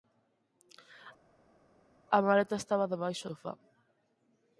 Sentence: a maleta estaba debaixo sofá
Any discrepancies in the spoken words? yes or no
no